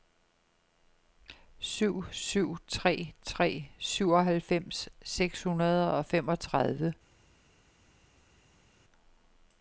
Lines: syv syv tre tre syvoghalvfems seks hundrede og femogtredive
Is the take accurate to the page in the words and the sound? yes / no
yes